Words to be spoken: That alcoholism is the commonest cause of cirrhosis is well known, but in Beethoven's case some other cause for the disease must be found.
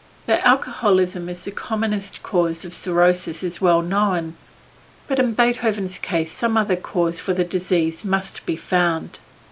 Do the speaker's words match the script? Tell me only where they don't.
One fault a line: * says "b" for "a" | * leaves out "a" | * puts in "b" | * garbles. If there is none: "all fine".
all fine